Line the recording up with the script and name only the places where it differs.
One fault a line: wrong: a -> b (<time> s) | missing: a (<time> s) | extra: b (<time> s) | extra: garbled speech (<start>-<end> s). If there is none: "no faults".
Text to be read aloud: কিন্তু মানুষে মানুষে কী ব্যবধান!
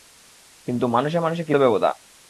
no faults